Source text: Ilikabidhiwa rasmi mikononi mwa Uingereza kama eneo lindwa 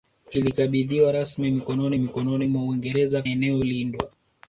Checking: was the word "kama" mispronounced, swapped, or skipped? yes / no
yes